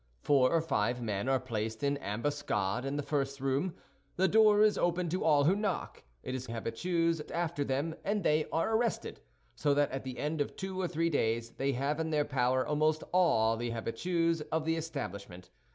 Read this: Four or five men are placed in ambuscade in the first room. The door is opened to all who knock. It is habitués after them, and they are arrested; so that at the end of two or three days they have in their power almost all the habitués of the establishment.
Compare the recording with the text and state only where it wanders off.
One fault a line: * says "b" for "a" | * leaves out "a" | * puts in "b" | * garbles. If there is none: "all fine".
all fine